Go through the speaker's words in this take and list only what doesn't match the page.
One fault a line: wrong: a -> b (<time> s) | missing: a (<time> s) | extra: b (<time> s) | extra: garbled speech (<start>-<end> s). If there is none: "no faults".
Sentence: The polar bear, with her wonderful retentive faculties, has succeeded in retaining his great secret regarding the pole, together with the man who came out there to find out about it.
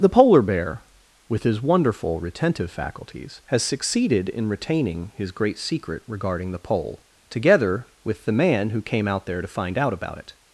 wrong: her -> his (1.4 s)